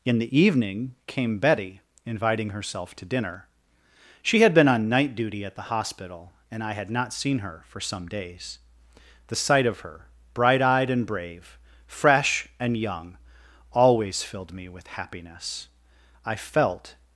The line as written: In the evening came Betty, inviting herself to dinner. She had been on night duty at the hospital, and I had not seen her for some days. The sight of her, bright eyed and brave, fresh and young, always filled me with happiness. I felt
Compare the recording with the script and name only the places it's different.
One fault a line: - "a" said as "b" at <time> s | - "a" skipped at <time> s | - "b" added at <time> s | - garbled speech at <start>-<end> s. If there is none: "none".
none